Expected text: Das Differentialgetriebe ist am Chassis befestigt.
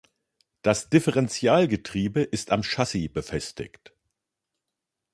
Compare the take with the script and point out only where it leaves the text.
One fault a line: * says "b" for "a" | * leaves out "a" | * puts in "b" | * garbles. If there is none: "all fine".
all fine